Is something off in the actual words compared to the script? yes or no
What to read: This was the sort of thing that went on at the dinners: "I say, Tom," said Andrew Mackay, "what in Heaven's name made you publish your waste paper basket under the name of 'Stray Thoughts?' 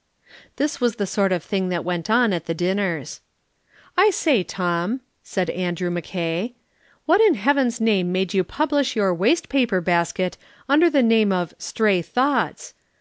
no